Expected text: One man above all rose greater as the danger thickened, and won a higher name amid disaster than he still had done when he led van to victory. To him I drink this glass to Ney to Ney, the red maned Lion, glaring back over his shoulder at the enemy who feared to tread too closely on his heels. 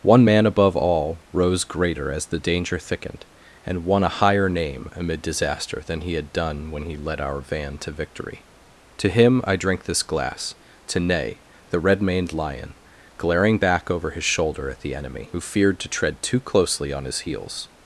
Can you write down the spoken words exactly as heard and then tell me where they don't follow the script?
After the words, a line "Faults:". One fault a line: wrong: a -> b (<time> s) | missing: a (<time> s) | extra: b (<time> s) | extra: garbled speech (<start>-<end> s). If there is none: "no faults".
One man above all rose greater as the danger thickened, and won a higher name amid disaster than he had done when he led our van to victory. To him I drink this glass to Ney, the red maned Lion, glaring back over his shoulder at the enemy who feared to tread too closely on his heels.
Faults:
missing: still (6.1 s)
extra: our (7.2 s)
missing: to Ney (11.4 s)